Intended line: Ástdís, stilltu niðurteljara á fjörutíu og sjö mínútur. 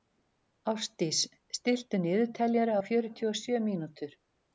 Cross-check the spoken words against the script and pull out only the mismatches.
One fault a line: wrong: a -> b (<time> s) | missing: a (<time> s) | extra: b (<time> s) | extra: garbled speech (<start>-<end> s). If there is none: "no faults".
no faults